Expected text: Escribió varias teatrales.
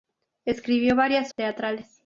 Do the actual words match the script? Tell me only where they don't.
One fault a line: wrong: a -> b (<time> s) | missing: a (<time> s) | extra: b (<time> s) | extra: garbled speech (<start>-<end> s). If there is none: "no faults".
no faults